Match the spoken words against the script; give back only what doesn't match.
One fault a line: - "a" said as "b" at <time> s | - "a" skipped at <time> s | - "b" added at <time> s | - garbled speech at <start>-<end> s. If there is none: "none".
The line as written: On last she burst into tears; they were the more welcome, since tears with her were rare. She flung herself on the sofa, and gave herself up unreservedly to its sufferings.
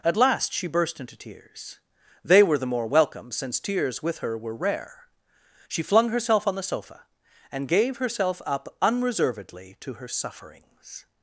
- "On" said as "At" at 0.0 s
- "its" said as "her" at 9.9 s